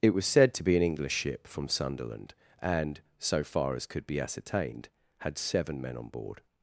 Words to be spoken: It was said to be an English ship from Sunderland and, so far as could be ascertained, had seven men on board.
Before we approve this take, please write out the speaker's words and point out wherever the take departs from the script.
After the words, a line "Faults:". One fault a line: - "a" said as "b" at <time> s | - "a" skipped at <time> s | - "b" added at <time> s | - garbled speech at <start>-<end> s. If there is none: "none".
It was said to be an English ship from Sunderland and, so far as could be ascertained, had seven men on board.
Faults:
none